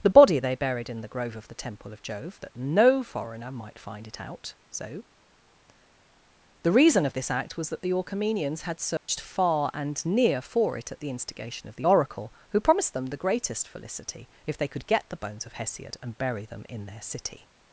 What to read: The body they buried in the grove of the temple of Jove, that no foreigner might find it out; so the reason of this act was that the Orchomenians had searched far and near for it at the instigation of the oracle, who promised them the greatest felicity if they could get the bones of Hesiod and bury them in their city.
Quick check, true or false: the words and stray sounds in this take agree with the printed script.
false